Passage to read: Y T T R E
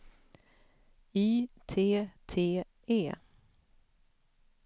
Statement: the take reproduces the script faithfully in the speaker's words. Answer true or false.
false